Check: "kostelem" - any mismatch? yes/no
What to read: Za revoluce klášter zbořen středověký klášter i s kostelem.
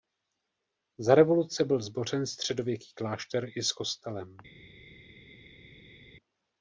no